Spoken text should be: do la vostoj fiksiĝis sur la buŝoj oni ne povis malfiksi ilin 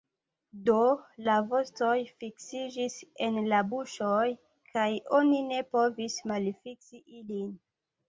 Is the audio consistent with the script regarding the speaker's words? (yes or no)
no